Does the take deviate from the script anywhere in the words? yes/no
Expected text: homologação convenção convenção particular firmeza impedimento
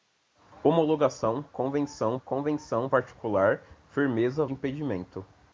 no